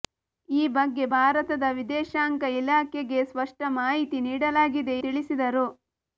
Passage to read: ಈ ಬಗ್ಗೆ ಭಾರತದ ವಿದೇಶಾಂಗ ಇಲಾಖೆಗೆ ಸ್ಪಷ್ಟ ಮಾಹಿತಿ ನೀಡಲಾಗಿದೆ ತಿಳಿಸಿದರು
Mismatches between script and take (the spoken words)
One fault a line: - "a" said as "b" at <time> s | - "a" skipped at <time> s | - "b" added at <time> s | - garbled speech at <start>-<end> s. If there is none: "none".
none